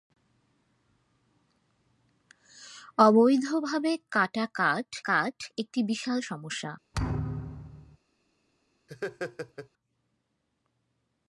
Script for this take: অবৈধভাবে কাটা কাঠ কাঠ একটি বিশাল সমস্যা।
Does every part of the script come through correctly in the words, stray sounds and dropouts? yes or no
no